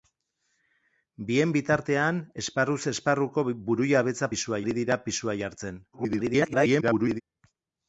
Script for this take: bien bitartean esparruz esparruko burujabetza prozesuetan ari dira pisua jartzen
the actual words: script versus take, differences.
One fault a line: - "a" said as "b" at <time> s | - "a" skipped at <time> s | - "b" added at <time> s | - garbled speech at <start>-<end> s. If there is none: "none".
- "prozesuetan" said as "pisua" at 4.3 s
- garbled speech at 5.9-7.2 s